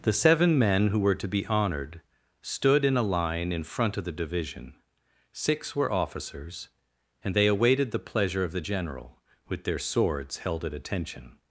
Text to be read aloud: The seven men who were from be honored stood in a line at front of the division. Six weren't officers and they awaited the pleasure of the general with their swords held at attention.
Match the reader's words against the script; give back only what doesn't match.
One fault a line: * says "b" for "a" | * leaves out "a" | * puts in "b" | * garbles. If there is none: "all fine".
* says "to" for "from"
* says "in" for "at"
* says "were" for "weren't"